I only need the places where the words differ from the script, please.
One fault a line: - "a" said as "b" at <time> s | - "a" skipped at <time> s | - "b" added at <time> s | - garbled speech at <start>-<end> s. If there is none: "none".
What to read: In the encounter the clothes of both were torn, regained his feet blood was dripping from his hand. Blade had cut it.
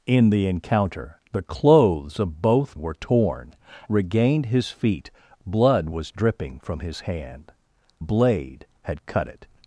none